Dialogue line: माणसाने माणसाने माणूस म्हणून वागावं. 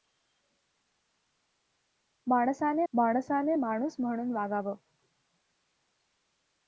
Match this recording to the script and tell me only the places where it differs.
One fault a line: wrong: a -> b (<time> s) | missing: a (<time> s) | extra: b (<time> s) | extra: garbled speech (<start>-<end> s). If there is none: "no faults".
no faults